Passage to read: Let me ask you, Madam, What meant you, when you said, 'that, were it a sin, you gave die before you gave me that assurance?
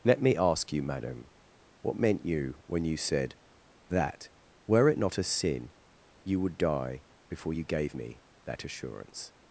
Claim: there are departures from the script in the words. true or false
true